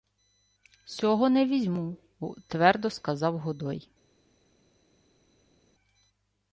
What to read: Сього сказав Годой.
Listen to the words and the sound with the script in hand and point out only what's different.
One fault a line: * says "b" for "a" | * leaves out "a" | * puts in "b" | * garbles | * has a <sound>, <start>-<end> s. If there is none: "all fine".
* puts in "не візьму твердо"